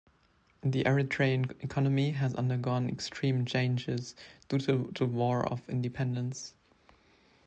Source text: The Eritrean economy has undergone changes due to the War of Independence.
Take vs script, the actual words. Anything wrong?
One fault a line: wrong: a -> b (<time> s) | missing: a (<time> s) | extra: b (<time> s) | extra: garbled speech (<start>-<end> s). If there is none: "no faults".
extra: extreme (2.9 s)